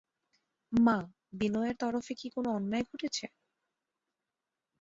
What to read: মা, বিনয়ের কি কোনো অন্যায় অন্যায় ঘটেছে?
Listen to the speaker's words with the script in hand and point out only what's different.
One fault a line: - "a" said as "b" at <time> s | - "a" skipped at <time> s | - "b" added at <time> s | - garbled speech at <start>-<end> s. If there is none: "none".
- "তরফে" added at 1.8 s
- "অন্যায়" skipped at 2.8 s